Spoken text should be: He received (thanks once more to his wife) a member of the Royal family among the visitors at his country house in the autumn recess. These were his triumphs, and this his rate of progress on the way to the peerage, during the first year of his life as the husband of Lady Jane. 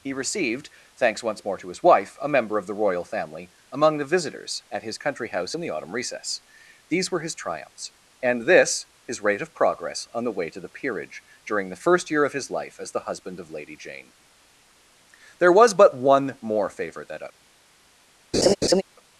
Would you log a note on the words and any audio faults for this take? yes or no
yes